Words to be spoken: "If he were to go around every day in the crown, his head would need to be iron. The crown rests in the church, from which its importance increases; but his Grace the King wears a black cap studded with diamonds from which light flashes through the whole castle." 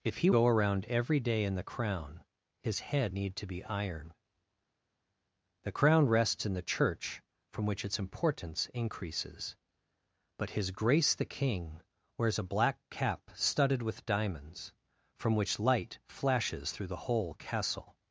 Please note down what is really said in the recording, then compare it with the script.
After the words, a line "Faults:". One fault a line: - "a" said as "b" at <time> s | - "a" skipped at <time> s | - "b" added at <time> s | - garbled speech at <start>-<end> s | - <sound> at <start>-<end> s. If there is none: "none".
"If he go around every day in the crown, his head need to be iron. The crown rests in the church, from which its importance increases; but his Grace the King wears a black cap studded with diamonds from which light flashes through the whole castle."
Faults:
- "were to" skipped at 0.3 s
- "would" skipped at 3.1 s